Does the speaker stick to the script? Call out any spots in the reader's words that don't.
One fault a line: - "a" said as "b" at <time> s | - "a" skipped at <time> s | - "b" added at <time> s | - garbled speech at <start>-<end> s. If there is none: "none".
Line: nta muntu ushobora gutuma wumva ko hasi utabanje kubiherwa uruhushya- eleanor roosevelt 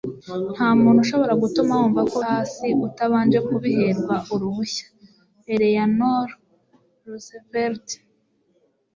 none